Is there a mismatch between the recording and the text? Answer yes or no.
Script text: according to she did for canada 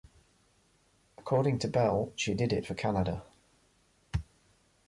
yes